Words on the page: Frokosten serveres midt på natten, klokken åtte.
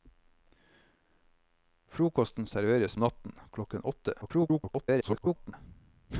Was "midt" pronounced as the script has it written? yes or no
no